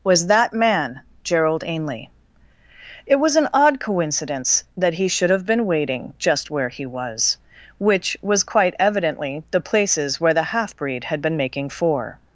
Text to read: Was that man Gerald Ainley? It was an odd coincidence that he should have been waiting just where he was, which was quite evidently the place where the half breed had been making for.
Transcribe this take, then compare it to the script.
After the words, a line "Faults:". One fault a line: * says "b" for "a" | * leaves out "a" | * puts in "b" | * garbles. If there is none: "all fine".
Was that man Gerald Ainley? It was an odd coincidence that he should have been waiting just where he was, which was quite evidently the places where the half breed had been making for.
Faults:
* says "places" for "place"